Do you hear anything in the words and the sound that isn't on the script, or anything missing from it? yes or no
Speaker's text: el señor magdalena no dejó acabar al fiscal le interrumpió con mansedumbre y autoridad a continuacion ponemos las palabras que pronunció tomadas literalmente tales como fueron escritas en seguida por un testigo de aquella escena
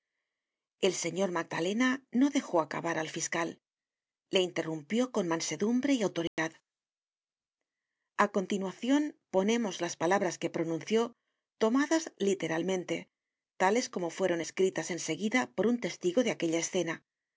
yes